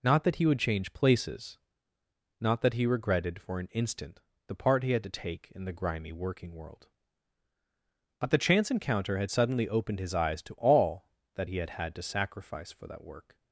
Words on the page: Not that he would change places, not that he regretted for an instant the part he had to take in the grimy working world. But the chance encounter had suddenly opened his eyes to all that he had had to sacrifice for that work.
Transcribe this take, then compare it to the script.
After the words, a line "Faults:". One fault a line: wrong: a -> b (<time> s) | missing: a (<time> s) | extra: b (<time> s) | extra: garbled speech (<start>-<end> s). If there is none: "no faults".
Not that he would change places, not that he regretted for an instant the part he had to take in the grimy working world. But the chance encounter had suddenly opened his eyes to all that he had had to sacrifice for that work.
Faults:
no faults